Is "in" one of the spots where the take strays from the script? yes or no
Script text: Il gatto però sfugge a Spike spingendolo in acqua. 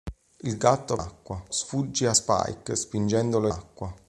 yes